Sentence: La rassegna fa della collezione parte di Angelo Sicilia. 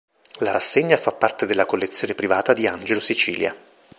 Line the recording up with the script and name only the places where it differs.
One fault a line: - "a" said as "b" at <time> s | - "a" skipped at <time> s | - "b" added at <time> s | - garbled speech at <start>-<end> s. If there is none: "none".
- "parte" added at 1.1 s
- "parte" said as "privata" at 2.1 s